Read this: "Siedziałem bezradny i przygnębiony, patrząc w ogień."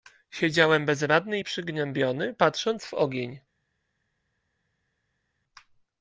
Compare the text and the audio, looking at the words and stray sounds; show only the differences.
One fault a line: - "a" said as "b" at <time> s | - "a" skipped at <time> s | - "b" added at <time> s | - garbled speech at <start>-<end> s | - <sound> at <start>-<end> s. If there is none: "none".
none